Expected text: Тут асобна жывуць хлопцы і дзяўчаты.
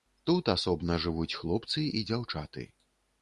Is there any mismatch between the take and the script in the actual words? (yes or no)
no